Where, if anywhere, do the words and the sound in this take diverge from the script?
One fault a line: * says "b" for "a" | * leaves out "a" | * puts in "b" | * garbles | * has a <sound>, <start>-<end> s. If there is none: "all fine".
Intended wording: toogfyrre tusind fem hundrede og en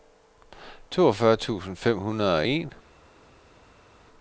all fine